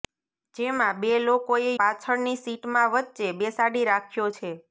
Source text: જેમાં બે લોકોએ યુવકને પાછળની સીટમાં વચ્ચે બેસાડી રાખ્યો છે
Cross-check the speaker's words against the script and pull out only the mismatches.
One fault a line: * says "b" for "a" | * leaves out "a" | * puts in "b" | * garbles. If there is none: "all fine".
* leaves out "યુવકને"